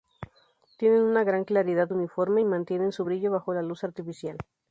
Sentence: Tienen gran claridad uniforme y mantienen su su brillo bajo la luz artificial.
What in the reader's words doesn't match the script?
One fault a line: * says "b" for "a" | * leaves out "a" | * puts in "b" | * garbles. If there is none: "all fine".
* puts in "una"
* leaves out "su"